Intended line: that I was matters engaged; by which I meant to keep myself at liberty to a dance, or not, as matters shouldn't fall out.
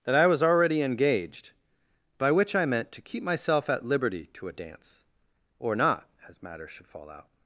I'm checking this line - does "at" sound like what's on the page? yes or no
yes